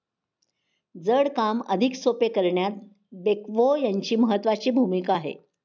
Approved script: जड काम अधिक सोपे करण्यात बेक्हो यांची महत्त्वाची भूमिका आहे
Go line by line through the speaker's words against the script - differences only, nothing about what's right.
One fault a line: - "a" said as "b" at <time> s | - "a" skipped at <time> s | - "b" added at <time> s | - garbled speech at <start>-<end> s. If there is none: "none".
none